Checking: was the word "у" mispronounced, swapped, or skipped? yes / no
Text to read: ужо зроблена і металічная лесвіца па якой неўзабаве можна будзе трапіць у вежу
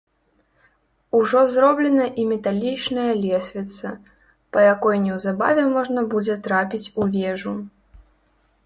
no